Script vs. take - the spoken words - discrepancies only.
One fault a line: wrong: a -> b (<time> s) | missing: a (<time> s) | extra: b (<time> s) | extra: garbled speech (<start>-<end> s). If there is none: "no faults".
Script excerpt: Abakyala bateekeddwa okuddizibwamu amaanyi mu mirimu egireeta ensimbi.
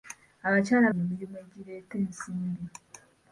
missing: bateekeddwa okuddizibwamu amaanyi (0.9 s)